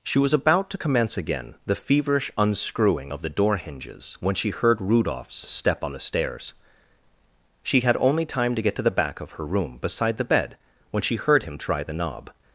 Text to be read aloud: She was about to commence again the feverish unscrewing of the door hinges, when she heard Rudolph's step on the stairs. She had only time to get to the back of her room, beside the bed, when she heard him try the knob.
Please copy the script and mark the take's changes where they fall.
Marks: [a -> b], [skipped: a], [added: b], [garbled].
She was about to commence again the feverish unscrewing of the door hinges, when she heard Rudolph's step on the stairs. She had only time to get to the back of her room, beside the bed, when she heard him try the knob.